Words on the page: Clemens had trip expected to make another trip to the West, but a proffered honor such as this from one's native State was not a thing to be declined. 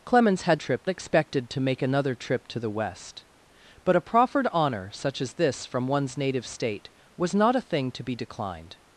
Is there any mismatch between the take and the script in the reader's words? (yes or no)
no